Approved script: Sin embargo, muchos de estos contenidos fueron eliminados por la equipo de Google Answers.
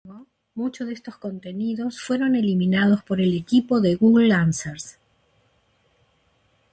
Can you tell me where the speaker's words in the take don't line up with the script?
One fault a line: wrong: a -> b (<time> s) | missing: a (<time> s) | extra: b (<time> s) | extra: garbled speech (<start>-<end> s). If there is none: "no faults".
wrong: la -> el (3.2 s)